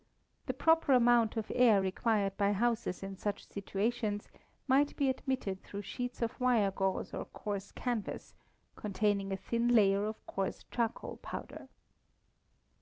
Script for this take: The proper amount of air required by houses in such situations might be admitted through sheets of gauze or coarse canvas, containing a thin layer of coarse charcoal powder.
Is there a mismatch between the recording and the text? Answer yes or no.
yes